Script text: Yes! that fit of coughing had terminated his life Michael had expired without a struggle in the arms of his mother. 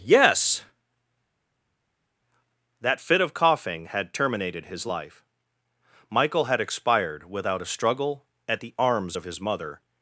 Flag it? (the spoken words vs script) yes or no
yes